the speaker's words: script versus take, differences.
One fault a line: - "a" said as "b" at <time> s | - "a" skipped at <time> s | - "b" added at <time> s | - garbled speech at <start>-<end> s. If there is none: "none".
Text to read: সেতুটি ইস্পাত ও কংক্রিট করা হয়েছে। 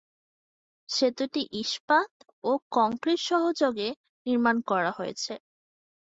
- "সহযোগে নির্মাণ" added at 3.3 s